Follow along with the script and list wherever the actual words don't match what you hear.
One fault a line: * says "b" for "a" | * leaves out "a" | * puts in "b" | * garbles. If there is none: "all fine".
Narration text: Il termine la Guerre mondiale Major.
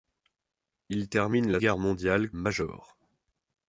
all fine